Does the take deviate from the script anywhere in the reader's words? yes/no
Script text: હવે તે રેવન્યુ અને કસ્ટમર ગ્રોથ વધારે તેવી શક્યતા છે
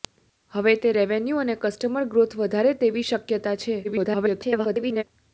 yes